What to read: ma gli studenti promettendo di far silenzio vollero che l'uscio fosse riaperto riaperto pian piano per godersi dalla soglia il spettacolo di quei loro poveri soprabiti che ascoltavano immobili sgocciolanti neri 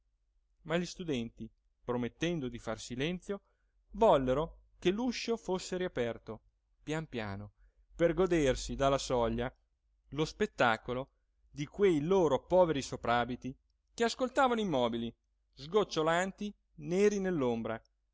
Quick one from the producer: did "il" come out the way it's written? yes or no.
no